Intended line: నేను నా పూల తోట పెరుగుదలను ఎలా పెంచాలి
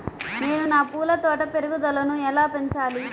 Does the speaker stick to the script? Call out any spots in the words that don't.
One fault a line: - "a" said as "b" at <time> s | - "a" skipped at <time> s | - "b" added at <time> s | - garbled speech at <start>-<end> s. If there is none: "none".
none